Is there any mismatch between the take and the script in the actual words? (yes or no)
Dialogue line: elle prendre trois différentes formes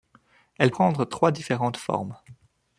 no